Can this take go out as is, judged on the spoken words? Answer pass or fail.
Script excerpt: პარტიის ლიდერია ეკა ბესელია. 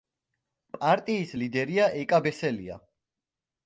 pass